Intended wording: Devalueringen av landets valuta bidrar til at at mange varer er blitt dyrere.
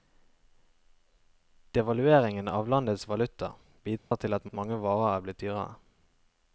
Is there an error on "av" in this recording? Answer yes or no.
no